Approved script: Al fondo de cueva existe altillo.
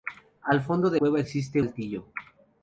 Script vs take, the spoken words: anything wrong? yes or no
no